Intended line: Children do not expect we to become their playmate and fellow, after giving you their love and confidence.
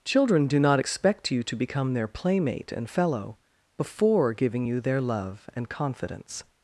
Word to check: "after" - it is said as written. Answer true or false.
false